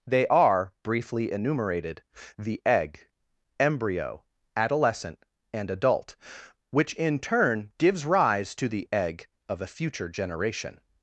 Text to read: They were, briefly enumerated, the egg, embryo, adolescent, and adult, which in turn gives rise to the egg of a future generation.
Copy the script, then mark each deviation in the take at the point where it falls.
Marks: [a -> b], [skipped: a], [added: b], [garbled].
They [were, -> are] briefly enumerated, the egg, embryo, adolescent, and adult, which in turn gives rise to the egg of a future generation.